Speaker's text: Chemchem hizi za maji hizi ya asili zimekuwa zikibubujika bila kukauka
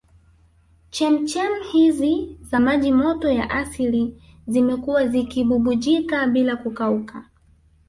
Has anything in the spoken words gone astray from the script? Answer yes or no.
yes